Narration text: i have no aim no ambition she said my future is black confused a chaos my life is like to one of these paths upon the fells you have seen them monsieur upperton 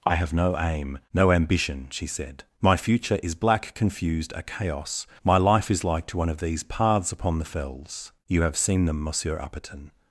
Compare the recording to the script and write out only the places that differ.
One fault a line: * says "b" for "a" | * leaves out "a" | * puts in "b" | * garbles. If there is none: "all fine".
all fine